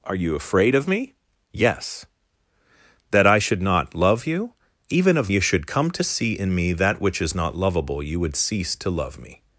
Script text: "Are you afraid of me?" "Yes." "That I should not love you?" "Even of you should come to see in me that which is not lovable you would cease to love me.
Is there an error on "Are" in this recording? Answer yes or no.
no